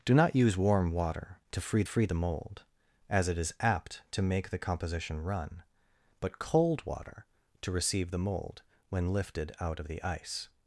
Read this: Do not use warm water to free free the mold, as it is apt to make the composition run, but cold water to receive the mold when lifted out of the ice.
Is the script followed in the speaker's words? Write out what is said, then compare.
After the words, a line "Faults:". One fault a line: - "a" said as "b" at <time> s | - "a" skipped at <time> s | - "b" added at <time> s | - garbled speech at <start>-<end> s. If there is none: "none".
Do not use warm water to free free the mold, as it is apt to make the composition run, but cold water to receive the mold when lifted out of the ice.
Faults:
none